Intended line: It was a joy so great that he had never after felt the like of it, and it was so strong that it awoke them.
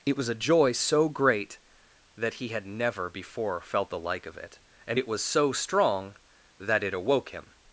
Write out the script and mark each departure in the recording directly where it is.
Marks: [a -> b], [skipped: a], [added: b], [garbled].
It was a joy so great that he had never [after -> before] felt the like of it, and it was so strong that it awoke [them. -> him]